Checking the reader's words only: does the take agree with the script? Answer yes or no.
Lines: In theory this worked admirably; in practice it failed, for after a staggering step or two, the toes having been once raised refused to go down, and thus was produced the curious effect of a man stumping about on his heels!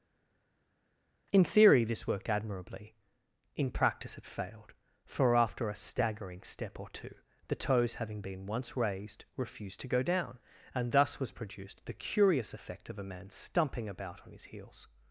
yes